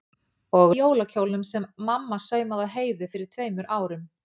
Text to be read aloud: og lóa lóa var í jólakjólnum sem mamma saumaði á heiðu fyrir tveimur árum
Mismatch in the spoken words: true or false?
true